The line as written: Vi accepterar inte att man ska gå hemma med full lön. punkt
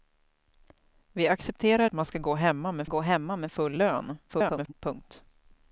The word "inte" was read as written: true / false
false